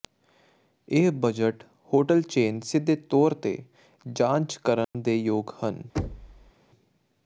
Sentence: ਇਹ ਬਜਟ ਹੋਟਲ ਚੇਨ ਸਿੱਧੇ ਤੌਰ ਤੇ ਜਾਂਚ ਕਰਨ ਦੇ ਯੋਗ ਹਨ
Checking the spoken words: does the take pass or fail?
pass